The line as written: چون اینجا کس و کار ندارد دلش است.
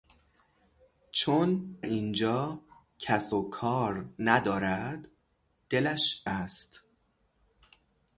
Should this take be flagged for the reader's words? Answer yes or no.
no